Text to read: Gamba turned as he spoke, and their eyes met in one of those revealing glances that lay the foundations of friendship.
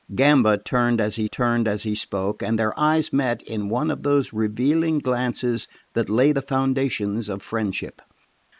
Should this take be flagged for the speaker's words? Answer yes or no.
yes